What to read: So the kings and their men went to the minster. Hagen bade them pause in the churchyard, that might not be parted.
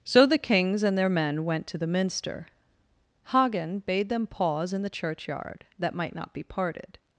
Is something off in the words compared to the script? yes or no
no